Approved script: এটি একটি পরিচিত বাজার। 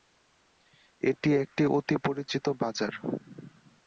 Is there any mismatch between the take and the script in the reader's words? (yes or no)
yes